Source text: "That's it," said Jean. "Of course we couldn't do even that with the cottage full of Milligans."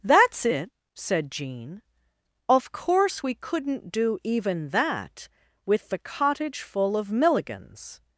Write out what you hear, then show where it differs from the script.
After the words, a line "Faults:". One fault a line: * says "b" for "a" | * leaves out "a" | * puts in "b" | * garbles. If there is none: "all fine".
"That's it," said Jean. "Of course we couldn't do even that with the cottage full of Milligans."
Faults:
all fine